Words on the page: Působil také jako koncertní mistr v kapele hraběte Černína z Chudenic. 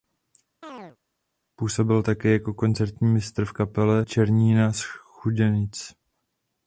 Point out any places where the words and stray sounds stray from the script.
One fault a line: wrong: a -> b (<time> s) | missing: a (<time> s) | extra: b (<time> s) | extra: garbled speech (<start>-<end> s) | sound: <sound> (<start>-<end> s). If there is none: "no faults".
sound: chirp (0.6-1.0 s)
missing: hraběte (4.0 s)